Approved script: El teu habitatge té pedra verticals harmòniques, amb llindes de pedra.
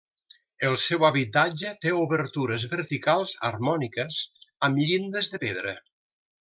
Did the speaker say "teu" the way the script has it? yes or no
no